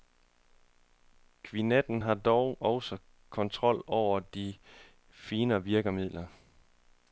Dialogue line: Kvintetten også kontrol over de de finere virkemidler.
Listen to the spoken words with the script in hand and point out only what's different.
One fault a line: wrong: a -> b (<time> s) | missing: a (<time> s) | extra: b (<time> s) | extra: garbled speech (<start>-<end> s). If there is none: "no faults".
extra: har dog (2.0 s)
missing: de (4.5 s)